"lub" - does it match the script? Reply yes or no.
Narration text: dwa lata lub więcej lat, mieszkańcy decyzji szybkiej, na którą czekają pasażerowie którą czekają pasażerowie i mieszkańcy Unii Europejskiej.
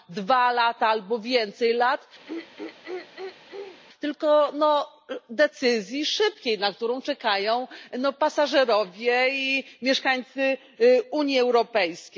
no